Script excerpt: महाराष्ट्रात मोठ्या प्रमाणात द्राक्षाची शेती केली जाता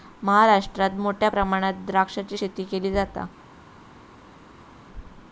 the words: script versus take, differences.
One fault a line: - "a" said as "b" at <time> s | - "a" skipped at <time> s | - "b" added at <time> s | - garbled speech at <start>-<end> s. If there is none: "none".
none